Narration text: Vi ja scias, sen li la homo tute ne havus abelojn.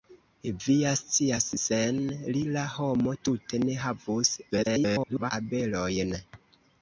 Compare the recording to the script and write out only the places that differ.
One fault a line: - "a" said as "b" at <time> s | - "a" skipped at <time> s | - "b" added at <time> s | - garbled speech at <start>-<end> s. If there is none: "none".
- garbled speech at 4.5-5.3 s